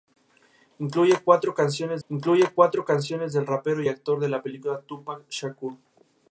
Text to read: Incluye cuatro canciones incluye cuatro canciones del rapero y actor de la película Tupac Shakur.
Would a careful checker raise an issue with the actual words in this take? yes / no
no